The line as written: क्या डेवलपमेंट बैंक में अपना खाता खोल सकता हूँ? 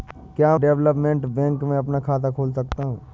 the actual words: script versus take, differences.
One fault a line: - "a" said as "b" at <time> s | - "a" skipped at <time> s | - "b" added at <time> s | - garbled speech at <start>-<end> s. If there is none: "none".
none